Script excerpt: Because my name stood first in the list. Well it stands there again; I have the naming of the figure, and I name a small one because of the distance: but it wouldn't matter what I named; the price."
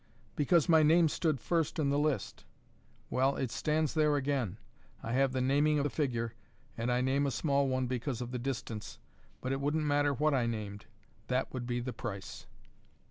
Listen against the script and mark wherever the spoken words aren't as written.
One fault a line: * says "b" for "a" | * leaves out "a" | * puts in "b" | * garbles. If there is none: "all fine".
* puts in "that would be"